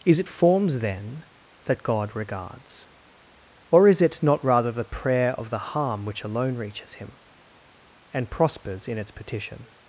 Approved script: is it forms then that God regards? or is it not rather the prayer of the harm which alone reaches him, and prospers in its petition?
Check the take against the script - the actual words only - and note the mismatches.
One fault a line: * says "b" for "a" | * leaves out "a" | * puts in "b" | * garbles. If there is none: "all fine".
all fine